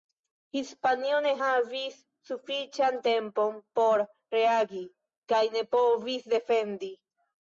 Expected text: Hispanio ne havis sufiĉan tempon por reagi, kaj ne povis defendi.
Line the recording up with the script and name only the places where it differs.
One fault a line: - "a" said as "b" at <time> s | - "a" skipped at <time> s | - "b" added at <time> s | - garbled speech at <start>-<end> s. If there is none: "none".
none